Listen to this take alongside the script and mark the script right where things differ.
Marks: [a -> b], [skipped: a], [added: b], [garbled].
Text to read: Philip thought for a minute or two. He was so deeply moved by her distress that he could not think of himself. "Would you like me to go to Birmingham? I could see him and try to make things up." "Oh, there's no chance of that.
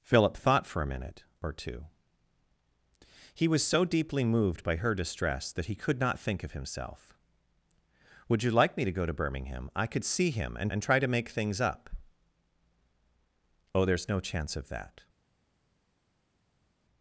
Philip thought for a minute or two. He was so deeply moved by her distress that he could not think of himself. "Would you like me to go to Birmingham? I could see him and [added: and] try to make things up." "Oh, there's no chance of that.